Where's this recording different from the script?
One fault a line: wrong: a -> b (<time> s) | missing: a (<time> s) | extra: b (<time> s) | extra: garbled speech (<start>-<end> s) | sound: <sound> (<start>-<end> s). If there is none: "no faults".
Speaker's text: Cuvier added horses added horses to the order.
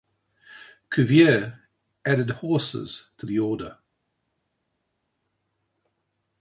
missing: added horses (3.1 s)